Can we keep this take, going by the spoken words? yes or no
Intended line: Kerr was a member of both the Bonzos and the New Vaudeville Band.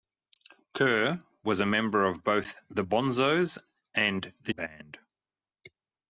no